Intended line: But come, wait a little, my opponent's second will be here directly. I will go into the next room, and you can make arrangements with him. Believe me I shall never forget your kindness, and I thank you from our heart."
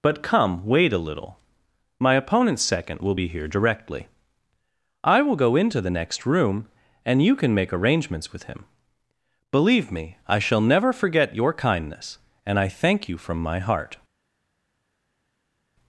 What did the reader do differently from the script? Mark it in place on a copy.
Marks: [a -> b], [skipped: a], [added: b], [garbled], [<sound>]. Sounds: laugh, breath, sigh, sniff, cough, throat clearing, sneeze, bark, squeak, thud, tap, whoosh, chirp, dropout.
But come, wait a little, my opponent's second will be here directly. I will go into the next room, and you can make arrangements with him. Believe me I shall never forget your kindness, and I thank you from [our -> my] heart."